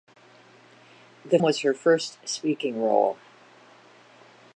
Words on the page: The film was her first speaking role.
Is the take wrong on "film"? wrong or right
wrong